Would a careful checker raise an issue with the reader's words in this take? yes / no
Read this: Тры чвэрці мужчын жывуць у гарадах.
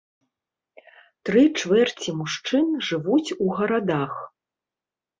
no